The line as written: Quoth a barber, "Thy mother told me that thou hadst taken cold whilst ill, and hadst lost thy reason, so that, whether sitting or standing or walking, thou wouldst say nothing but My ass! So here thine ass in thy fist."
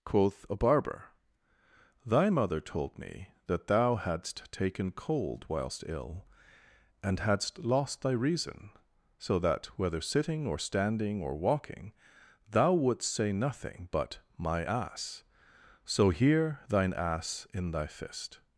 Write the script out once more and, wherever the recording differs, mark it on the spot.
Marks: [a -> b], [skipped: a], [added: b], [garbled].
Quoth a barber, "Thy mother told me that thou hadst taken cold whilst ill, and hadst lost thy reason, so that, whether sitting or standing or walking, thou wouldst say nothing but My ass! So here thine ass in thy fist."